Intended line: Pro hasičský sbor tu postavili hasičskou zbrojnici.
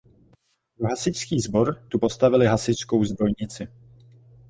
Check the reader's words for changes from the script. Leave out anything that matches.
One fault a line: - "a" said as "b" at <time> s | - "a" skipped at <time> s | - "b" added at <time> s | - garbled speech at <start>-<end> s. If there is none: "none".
none